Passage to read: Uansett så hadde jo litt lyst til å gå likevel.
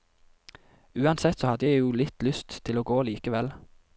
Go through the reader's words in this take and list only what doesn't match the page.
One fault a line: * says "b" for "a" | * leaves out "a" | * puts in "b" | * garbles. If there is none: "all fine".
* puts in "jeg"